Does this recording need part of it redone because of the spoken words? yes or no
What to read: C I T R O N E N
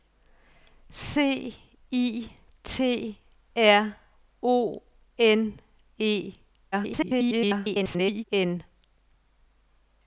yes